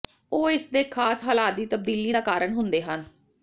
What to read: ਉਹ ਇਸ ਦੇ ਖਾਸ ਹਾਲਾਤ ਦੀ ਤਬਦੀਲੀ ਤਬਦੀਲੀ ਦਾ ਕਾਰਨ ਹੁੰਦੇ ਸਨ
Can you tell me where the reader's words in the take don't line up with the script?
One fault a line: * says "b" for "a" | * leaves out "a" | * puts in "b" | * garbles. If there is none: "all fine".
* leaves out "ਤਬਦੀਲੀ"
* says "ਹਨ" for "ਸਨ"